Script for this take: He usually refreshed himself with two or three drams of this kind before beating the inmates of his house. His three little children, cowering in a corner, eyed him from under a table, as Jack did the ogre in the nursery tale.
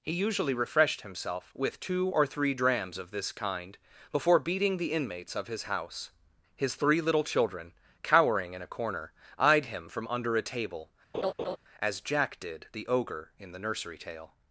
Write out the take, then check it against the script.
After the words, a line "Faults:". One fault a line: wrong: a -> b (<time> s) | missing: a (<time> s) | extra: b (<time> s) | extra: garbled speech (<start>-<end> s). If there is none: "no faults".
He usually refreshed himself with two or three drams of this kind before beating the inmates of his house. His three little children, cowering in a corner, eyed him from under a table, as Jack did the ogre in the nursery tale.
Faults:
no faults